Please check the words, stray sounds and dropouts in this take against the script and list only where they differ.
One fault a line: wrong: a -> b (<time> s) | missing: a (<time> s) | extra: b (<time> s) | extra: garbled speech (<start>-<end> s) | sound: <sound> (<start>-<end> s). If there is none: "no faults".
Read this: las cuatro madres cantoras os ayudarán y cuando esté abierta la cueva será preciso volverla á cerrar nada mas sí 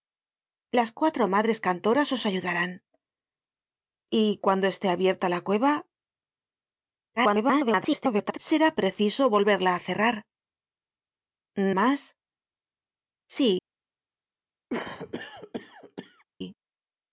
extra: garbled speech (7.2-8.4 s)
missing: nada (10.2 s)
sound: cough (14.7-16.2 s)